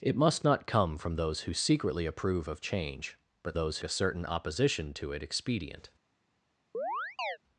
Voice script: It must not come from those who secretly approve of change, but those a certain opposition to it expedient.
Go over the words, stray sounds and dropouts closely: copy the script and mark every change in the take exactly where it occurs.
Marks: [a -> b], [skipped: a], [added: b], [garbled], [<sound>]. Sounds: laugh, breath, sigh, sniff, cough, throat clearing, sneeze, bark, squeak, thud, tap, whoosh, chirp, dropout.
It must not come from those who secretly approve of change, but those a certain opposition to it expedient. [chirp]